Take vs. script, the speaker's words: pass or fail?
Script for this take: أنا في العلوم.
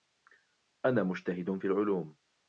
fail